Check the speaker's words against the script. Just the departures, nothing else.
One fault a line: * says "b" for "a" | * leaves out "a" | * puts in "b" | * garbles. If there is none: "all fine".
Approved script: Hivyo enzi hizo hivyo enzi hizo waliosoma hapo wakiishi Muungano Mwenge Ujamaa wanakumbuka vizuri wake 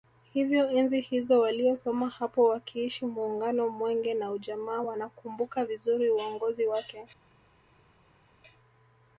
* leaves out "hivyo enzi hizo"
* puts in "na"
* puts in "uongozi"